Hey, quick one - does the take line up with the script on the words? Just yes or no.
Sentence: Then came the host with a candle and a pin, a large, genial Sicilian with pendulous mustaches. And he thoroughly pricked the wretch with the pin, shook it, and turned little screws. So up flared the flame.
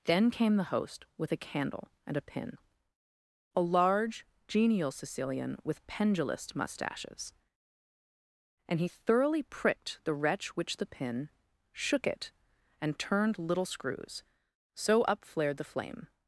no